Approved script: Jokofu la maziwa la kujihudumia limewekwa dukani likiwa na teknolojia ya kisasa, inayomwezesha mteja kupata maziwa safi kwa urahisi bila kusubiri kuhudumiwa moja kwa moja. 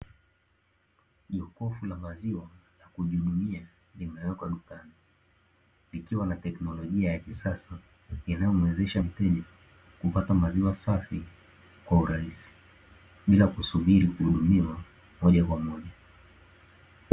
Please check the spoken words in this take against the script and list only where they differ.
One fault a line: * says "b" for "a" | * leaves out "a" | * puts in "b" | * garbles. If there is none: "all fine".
all fine